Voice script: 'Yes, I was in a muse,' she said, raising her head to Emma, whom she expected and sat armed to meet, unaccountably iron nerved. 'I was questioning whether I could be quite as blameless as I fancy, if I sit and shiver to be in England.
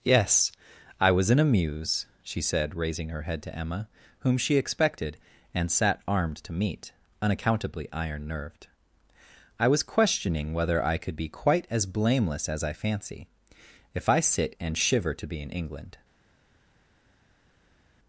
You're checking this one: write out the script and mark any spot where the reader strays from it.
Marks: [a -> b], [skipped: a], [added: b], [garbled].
'Yes, I was in a muse,' she said, raising her head to Emma, whom she expected and sat armed to meet, unaccountably iron nerved. 'I was questioning whether I could be quite as blameless as I fancy, if I sit and shiver to be in England.